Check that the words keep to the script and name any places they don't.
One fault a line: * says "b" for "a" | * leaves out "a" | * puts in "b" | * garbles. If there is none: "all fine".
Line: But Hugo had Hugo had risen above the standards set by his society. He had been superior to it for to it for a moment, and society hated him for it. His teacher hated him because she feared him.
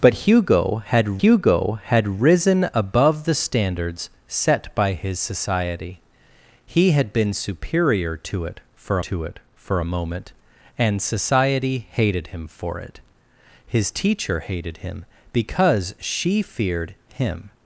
all fine